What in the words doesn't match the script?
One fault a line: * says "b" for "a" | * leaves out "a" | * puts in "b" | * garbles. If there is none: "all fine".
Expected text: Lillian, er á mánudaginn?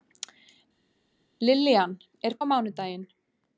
all fine